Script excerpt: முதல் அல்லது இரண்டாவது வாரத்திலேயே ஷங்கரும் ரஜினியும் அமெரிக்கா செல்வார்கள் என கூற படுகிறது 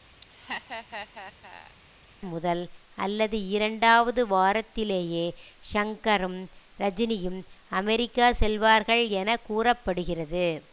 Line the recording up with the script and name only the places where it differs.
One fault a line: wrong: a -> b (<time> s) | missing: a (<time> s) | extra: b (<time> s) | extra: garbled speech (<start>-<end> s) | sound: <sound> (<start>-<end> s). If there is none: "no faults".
sound: laugh (0.2-1.8 s)